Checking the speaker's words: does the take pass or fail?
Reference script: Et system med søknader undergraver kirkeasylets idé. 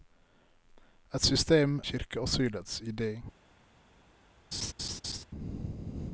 fail